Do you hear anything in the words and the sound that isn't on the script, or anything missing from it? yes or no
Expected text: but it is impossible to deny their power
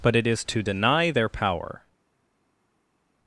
yes